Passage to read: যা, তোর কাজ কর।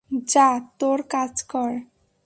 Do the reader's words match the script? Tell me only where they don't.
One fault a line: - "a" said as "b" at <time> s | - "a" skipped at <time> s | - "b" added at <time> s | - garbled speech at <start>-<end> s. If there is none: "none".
none